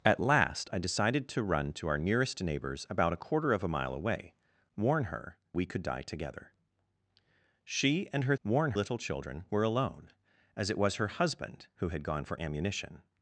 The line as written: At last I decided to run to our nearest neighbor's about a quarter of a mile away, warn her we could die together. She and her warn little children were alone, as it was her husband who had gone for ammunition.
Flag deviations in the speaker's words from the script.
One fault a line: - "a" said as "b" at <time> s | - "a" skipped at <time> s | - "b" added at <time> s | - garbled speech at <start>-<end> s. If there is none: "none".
none